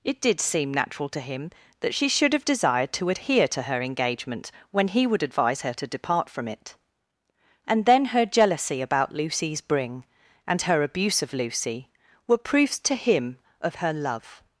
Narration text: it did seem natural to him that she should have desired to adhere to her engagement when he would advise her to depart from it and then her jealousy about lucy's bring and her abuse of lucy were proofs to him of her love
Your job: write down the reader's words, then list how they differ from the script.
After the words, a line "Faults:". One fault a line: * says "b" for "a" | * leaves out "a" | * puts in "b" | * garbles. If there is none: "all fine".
it did seem natural to him that she should have desired to adhere to her engagement when he would advise her to depart from it and then her jealousy about lucy's bring and her abuse of lucy were proofs to him of her love
Faults:
all fine